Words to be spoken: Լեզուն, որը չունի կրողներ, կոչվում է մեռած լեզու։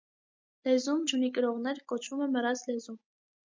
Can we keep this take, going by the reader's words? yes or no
no